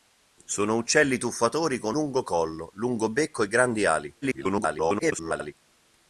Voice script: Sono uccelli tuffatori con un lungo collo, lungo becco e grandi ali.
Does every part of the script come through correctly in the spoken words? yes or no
no